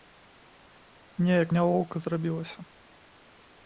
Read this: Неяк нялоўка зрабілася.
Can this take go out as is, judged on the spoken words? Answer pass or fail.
pass